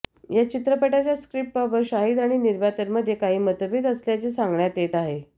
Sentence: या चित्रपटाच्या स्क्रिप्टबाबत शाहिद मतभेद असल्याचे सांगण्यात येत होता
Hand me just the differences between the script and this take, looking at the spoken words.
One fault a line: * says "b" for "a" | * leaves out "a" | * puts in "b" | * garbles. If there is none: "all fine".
* puts in "आणि निर्मात्यांमध्ये काही"
* says "आहे" for "होता"